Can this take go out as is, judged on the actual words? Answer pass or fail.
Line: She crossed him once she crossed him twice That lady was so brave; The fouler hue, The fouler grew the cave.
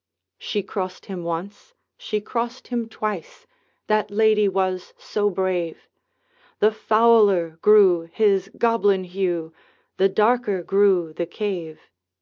fail